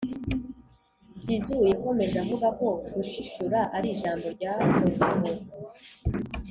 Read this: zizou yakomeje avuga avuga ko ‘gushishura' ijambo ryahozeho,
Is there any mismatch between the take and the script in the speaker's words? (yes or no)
yes